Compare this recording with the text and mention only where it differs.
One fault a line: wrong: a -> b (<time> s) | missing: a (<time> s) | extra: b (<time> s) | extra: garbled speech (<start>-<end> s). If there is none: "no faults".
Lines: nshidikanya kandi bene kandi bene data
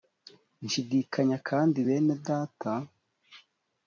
missing: kandi bene (2.1 s)